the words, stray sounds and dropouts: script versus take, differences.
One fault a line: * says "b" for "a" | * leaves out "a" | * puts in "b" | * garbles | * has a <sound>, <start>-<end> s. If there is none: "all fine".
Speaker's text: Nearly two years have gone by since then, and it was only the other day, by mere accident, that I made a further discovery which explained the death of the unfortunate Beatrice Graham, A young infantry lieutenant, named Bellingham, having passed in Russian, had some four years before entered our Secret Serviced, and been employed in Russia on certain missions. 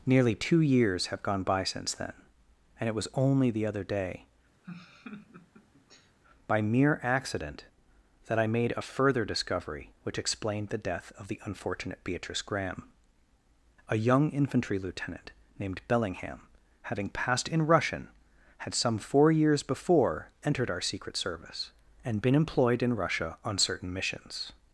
* has a laugh, 4.6-6.2 s
* says "Service" for "Serviced"